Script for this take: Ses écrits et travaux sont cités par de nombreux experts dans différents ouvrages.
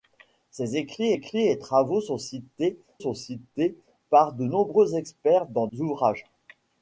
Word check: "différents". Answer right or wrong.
wrong